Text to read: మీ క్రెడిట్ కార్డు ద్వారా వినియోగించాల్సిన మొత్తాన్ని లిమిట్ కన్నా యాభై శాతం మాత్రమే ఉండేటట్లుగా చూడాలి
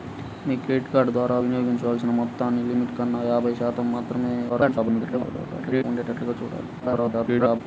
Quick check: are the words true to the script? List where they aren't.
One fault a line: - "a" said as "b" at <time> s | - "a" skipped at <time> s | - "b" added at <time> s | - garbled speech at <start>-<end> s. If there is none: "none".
- garbled speech at 4.5-5.8 s
- garbled speech at 6.8-7.6 s